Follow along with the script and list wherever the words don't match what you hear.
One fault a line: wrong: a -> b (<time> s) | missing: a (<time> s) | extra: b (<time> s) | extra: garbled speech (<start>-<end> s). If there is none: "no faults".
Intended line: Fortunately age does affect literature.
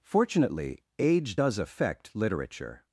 no faults